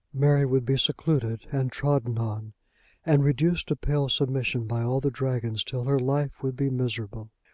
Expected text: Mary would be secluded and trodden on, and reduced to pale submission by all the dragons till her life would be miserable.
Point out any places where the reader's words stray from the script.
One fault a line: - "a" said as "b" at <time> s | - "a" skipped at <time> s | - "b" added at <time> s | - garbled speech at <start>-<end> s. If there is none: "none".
none